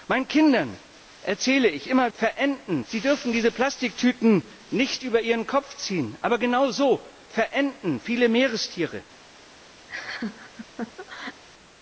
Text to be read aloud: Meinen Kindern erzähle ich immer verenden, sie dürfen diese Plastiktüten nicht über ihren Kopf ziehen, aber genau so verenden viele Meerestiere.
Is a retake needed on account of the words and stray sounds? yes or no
yes